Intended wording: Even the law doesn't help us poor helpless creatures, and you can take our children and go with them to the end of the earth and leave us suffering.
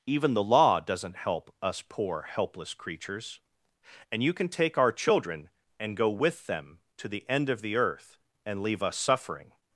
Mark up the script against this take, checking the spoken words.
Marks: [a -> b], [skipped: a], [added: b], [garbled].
Even the law doesn't help us poor helpless creatures, and you can take our children and go with them to the end of the earth and leave us suffering.